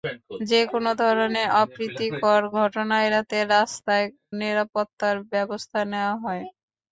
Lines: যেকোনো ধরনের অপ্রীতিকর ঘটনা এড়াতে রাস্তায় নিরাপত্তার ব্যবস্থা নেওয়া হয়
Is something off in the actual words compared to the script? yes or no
no